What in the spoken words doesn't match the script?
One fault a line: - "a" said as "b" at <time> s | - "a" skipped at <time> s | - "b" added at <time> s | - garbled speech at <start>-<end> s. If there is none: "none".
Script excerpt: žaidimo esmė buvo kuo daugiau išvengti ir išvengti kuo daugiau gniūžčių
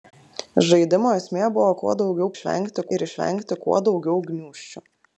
none